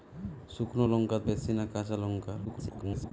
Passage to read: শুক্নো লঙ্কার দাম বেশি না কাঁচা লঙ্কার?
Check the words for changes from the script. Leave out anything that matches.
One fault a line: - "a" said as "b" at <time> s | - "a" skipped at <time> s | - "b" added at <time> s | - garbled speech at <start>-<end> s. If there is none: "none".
- "দাম" skipped at 1.2 s
- garbled speech at 2.5-3.1 s